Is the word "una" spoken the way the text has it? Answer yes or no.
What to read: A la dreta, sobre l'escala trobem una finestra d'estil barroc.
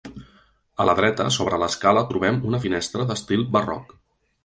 yes